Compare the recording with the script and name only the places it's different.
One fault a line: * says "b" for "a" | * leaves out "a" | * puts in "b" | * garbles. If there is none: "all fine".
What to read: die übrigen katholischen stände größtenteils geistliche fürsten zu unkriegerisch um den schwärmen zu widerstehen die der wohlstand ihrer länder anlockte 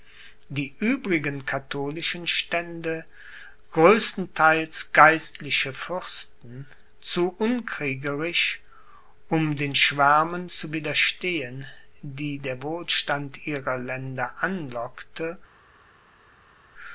all fine